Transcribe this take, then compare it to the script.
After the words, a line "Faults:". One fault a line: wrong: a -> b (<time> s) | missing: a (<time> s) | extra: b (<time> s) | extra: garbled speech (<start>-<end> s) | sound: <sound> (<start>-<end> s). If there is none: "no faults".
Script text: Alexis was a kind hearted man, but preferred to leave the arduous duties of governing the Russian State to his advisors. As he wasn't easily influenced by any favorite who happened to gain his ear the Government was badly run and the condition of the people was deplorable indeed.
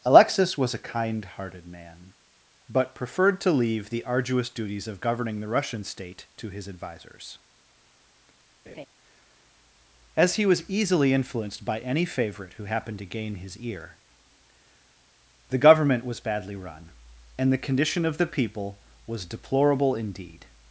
Alexis was a kind hearted man, but preferred to leave the arduous duties of governing the Russian State to his advisors. As he was easily influenced by any favorite who happened to gain his ear the Government was badly run and the condition of the people was deplorable indeed.
Faults:
sound: laugh (8.7-8.9 s)
wrong: wasn't -> was (10.5 s)